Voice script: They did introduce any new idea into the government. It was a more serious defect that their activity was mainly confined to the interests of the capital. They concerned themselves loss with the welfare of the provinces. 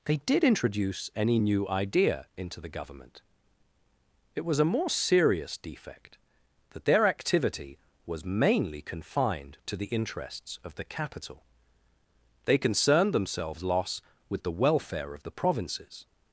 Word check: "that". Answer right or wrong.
right